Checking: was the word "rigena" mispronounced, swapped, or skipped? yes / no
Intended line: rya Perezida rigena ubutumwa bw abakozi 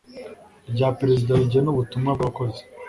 no